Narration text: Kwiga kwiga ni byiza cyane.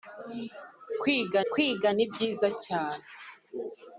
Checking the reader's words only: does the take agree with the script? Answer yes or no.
yes